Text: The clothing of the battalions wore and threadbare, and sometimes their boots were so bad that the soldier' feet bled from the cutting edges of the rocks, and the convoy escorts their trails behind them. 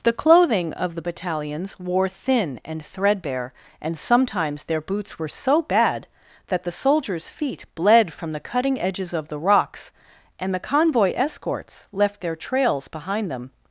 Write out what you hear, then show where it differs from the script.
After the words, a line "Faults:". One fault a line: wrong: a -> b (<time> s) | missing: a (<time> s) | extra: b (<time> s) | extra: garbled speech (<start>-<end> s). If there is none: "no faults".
The clothing of the battalions wore thin and threadbare, and sometimes their boots were so bad that the soldiers' feet bled from the cutting edges of the rocks, and the convoy escorts left their trails behind them.
Faults:
extra: thin (2.1 s)
wrong: soldier -> soldiers (6.7 s)
extra: left (11.9 s)